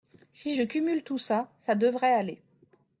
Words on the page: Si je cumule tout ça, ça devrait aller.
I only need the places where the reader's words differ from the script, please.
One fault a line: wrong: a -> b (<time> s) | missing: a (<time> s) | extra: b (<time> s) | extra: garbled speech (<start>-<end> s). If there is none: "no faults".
no faults